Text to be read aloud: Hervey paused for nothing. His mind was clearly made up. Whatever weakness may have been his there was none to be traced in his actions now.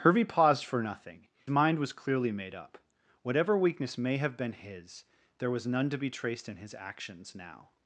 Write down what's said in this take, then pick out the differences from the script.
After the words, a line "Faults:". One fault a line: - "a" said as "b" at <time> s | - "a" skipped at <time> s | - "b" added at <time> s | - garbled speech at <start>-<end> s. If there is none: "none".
Hervey paused for nothing. Mind was clearly made up. Whatever weakness may have been his there was none to be traced in his actions now.
Faults:
- "His" skipped at 1.3 s